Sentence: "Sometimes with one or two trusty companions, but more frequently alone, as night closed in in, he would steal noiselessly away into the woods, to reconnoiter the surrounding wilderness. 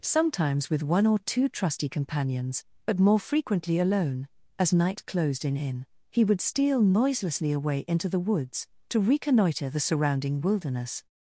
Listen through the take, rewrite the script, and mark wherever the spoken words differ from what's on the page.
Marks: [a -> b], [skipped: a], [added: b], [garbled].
"Sometimes with one or two trusty companions, but more frequently alone, as night closed in in, he would steal noiselessly away into the woods, to reconnoiter the surrounding wilderness.